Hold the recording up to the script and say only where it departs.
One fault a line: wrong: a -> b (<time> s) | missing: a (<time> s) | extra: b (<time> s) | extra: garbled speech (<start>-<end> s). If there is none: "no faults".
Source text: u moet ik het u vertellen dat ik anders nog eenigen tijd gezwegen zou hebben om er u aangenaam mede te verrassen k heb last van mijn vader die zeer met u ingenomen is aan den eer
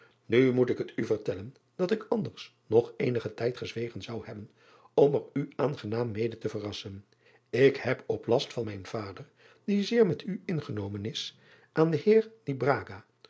extra: op (8.1 s)